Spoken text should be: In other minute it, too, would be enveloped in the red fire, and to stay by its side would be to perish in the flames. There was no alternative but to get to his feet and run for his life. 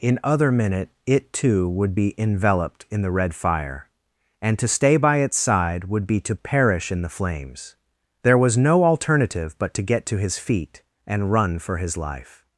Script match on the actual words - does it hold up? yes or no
yes